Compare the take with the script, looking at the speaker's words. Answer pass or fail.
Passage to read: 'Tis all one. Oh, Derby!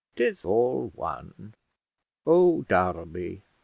pass